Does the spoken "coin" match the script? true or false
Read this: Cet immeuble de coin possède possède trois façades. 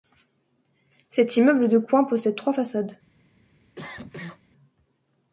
true